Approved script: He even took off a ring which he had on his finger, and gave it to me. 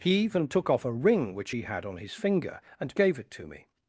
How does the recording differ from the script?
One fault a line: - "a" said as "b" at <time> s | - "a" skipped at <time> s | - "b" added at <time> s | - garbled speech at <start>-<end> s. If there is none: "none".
none